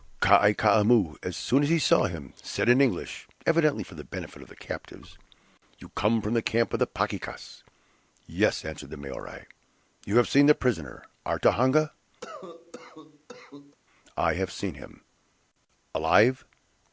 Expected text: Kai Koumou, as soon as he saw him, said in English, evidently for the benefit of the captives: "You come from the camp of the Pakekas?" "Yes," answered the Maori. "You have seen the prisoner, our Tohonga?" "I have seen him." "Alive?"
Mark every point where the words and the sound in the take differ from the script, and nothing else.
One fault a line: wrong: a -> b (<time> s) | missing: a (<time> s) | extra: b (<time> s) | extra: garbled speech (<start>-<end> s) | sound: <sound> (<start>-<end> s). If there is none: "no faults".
sound: cough (12.2-13.8 s)